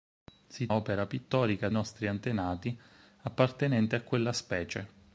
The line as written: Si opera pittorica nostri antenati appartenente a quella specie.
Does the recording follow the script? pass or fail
pass